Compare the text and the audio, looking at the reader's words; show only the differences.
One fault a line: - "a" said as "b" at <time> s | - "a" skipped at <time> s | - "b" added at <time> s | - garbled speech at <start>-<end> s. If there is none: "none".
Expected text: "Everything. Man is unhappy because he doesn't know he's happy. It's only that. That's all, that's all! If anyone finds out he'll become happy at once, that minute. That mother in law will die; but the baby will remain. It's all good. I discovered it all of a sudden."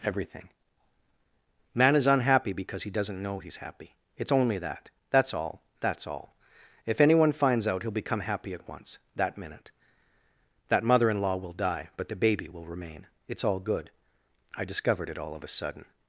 none